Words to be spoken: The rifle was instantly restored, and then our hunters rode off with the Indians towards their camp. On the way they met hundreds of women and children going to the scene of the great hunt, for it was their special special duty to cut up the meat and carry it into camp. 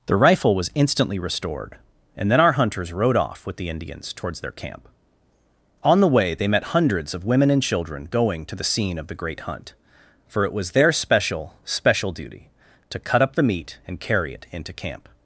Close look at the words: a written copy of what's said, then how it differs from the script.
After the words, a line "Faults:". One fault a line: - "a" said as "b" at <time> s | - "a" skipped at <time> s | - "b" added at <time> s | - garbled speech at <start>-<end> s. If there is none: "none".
The rifle was instantly restored, and then our hunters rode off with the Indians towards their camp. On the way they met hundreds of women and children going to the scene of the great hunt, for it was their special special duty to cut up the meat and carry it into camp.
Faults:
none